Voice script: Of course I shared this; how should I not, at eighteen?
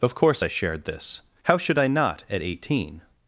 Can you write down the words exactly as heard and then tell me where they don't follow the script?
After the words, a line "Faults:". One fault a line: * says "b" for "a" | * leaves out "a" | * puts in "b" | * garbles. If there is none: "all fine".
Of course I shared this; how should I not, at eighteen?
Faults:
all fine